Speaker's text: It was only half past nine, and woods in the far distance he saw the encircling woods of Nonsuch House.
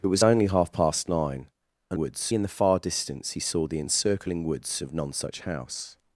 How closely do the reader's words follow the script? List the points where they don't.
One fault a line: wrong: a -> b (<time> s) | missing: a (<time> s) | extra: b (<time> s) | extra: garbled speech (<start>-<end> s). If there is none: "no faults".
no faults